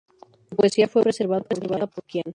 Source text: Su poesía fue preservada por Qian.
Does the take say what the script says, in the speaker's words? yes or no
yes